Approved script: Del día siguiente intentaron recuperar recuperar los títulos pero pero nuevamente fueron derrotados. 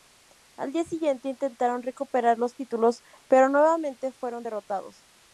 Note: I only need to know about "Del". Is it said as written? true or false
false